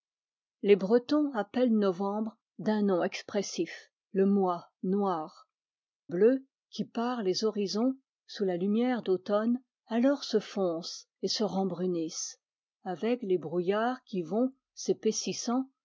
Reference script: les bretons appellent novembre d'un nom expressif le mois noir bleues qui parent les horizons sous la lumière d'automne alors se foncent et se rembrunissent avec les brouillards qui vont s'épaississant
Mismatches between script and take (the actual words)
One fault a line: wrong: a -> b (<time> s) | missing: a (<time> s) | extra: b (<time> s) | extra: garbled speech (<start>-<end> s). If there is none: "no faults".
no faults